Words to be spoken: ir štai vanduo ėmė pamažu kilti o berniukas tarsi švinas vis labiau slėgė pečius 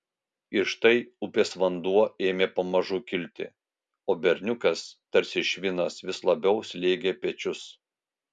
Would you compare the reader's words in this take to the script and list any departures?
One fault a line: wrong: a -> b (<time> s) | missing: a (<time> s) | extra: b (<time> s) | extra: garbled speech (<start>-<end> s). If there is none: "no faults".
extra: upės (1.2 s)